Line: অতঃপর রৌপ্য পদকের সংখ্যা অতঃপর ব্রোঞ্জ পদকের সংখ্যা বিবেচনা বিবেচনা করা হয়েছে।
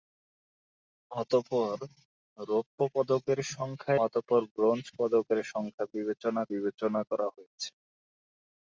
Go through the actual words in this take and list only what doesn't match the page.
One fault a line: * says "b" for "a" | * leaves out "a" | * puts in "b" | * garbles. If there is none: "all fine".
all fine